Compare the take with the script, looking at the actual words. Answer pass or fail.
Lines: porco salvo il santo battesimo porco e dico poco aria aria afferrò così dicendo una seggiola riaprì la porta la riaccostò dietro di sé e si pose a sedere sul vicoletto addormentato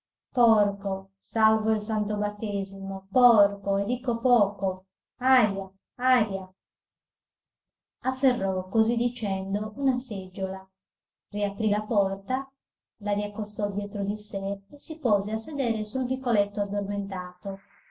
pass